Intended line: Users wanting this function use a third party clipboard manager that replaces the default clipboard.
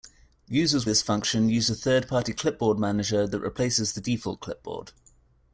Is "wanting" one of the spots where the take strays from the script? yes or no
yes